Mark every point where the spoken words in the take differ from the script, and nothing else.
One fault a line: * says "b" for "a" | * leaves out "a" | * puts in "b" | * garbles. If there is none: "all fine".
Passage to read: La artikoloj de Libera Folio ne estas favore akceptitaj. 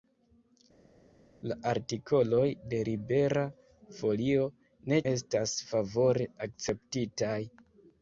all fine